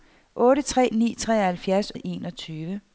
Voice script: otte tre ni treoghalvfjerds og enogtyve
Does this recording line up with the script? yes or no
yes